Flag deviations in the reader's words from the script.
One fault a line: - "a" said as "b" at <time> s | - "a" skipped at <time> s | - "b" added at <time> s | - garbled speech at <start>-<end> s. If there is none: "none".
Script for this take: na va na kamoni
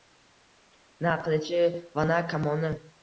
- "qilichi" added at 1.2 s